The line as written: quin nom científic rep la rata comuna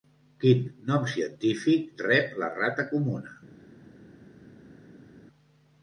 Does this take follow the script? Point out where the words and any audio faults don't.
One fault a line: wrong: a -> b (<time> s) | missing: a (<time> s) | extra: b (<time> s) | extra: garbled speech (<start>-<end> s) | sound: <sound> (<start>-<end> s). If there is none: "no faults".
no faults